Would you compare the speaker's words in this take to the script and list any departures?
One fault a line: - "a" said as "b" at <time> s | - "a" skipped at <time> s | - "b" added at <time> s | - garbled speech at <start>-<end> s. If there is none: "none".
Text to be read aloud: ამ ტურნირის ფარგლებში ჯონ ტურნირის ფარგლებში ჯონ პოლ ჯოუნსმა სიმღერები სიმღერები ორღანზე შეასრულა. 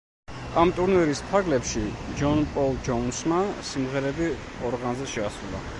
- "ტურნირის ფარგლებში ჯონ" skipped at 2.4 s
- "სიმღერები" skipped at 4.3 s